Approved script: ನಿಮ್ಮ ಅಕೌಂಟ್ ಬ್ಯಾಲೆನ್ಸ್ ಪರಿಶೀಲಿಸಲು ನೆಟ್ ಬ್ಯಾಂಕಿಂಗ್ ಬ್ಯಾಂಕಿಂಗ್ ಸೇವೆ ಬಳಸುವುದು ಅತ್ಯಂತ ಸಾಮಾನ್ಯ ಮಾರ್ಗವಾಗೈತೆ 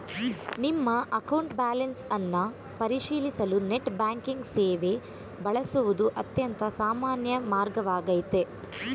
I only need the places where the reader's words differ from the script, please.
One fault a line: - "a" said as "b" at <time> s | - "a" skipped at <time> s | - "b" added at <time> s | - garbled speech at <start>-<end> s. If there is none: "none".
- "ಅನ್ನ" added at 2.1 s
- "ಬ್ಯಾಂಕಿಂಗ್" skipped at 4.4 s